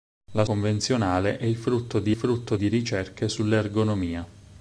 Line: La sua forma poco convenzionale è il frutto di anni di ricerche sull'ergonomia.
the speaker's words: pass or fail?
fail